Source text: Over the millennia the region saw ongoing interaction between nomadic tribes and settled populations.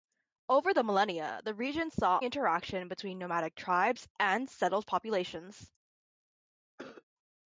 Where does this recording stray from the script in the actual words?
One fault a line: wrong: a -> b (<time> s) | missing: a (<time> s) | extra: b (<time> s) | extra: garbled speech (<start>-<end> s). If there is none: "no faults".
missing: ongoing (2.2 s)